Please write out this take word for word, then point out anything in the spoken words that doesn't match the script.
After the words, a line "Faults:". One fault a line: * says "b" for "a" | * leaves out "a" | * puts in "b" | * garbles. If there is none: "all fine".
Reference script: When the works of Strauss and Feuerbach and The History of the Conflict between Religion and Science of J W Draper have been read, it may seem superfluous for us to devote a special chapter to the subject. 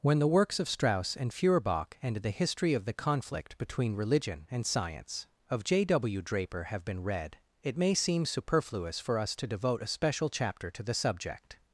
When the works of Strauss and Feuerbach and The History of the Conflict between Religion and Science of J W Draper have been read, it may seem superfluous for us to devote a special chapter to the subject.
Faults:
all fine